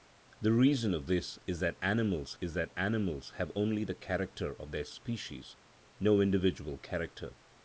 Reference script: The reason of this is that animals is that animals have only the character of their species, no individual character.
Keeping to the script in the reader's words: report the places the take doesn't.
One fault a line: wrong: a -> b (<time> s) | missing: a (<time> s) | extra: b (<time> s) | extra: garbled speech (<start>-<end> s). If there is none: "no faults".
no faults